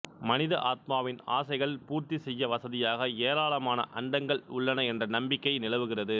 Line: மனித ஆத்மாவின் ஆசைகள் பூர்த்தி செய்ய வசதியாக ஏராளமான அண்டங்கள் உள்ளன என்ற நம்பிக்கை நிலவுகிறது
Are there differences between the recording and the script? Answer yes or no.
no